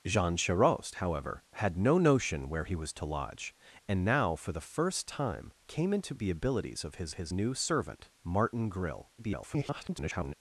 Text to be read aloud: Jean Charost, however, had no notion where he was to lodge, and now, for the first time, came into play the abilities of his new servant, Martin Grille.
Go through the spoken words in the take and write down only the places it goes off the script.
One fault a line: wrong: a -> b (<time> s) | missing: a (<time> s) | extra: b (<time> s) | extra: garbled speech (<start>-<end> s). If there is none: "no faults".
missing: play (6.2 s)
extra: his (7.1 s)
extra: garbled speech (9.2-10.3 s)